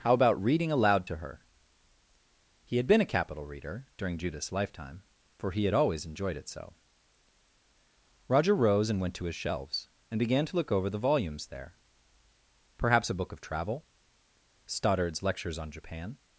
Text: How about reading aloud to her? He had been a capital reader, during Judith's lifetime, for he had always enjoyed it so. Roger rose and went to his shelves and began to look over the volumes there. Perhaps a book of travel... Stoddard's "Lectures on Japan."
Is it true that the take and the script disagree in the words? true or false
false